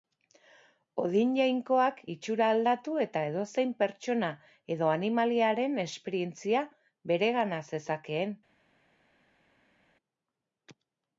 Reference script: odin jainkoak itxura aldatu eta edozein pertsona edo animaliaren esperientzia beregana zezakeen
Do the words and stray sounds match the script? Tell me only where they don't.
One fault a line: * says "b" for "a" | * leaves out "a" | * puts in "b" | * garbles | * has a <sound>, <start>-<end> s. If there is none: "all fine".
all fine